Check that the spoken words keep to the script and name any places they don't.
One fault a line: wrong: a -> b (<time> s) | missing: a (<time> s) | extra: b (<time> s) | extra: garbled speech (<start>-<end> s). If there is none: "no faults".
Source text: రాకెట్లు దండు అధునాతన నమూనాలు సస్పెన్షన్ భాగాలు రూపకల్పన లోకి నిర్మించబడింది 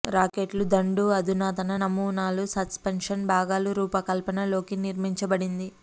no faults